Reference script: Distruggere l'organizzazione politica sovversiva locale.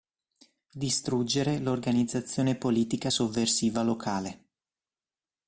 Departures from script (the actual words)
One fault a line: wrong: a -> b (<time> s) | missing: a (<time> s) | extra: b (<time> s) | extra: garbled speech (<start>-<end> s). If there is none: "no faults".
no faults